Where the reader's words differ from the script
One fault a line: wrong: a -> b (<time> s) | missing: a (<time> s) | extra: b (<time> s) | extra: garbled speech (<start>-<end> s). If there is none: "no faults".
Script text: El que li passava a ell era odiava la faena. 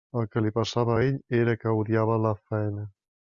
extra: que (1.6 s)